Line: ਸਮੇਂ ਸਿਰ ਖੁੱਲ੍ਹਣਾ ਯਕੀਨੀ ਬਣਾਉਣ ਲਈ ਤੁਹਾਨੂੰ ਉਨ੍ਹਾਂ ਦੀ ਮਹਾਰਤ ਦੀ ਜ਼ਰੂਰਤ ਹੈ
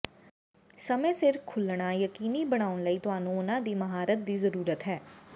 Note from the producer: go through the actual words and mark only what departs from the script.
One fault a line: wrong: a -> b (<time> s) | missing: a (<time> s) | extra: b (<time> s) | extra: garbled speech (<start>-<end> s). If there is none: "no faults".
no faults